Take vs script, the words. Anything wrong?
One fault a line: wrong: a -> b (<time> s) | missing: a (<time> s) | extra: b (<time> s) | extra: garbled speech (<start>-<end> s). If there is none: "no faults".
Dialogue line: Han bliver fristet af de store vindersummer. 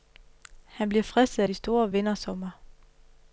no faults